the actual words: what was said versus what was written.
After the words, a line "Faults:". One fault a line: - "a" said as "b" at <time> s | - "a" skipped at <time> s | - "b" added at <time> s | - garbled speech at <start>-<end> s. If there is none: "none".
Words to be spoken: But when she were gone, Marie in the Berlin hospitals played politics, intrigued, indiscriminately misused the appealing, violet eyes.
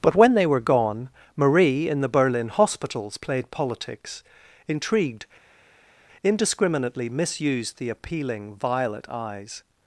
But when they were gone, Marie in the Berlin hospitals played politics, intrigued, indiscriminately misused the appealing, violet eyes.
Faults:
- "she" said as "they" at 0.3 s